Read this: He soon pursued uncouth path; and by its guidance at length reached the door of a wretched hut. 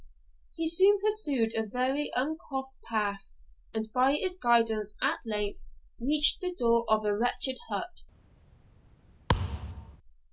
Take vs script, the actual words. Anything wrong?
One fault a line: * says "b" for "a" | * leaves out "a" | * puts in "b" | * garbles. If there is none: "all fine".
* puts in "a very"